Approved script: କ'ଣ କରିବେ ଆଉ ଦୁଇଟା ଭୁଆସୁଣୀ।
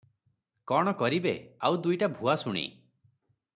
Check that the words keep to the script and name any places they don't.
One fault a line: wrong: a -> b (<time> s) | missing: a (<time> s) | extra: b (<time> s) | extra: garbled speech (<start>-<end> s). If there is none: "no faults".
no faults